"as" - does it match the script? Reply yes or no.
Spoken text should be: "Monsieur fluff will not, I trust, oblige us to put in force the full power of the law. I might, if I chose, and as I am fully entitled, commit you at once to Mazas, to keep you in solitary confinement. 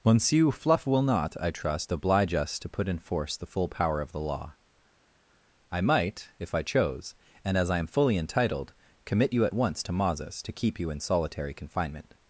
yes